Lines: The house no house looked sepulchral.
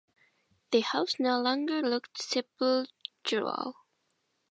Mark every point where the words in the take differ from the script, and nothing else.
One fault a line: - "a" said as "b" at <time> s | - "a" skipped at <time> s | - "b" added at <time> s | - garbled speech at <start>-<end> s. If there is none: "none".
- "house" said as "longer" at 1.4 s